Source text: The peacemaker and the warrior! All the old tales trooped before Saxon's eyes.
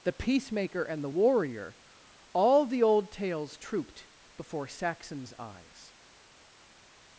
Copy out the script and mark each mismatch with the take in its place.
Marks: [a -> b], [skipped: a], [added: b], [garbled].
The peacemaker and the warrior! All the old tales trooped before Saxon's eyes.